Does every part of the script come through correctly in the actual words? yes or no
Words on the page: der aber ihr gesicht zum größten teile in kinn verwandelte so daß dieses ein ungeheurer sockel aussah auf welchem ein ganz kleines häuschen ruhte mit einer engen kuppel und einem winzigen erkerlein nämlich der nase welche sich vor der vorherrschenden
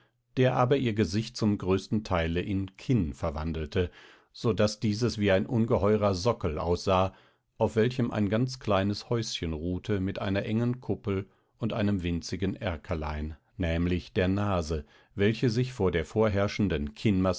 no